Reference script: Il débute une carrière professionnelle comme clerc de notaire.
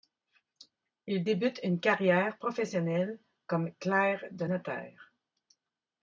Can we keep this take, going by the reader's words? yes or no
yes